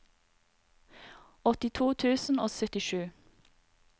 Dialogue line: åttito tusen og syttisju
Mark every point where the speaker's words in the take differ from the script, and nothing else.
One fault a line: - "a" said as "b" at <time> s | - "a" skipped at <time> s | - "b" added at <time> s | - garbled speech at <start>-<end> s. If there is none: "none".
none